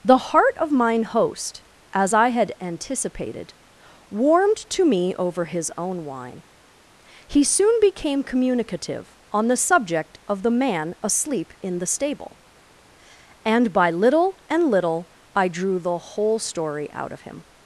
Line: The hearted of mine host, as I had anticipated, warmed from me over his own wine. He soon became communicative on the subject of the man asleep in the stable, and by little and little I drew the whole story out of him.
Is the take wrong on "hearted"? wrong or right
wrong